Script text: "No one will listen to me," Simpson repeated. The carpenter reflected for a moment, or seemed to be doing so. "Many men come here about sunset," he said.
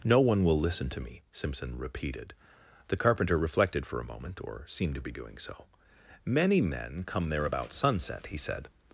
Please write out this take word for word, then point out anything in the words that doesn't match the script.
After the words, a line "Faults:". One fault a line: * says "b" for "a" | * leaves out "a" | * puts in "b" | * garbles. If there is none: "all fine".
"No one will listen to me," Simpson repeated. The carpenter reflected for a moment, or seemed to be doing so. "Many men come there about sunset," he said.
Faults:
* says "there" for "here"